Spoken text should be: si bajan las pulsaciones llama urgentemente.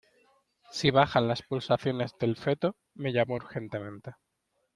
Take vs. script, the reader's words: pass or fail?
fail